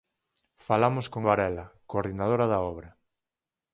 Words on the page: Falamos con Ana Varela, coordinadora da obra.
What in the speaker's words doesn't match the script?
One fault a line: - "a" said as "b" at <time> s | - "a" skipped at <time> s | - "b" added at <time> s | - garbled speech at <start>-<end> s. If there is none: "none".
- "Ana" skipped at 1.2 s